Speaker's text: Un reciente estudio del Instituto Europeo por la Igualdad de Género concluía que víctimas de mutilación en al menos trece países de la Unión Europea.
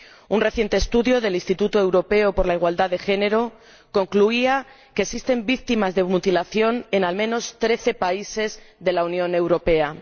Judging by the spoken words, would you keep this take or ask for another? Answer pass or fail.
fail